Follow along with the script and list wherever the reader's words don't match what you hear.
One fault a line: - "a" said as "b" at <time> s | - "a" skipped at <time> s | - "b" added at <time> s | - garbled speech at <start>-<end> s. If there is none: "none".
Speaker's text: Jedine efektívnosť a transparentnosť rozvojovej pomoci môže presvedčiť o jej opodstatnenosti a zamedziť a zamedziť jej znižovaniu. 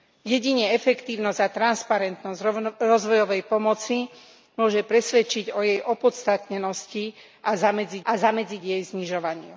none